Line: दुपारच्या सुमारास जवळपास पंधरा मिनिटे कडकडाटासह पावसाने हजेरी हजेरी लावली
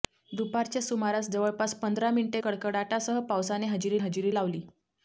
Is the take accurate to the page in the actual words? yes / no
yes